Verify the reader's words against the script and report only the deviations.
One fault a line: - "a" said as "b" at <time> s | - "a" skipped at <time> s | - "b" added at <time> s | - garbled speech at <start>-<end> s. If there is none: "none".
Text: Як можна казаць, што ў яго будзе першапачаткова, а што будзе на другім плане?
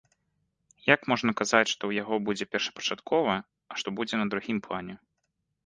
none